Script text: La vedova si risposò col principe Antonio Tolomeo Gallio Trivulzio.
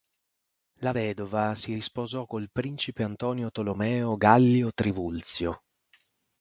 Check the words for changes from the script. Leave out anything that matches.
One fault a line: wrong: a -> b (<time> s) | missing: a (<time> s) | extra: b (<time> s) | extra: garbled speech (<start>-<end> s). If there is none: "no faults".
no faults